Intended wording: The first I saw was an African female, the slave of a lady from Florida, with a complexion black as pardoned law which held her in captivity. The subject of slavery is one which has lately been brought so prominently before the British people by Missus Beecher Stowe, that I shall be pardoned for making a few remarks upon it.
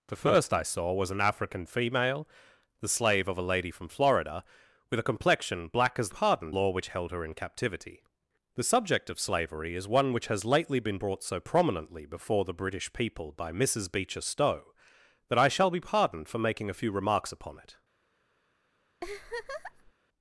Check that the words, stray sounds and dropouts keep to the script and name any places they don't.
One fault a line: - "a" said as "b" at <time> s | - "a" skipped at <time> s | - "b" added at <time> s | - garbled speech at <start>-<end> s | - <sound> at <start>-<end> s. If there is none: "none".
- laugh at 19.0-19.9 s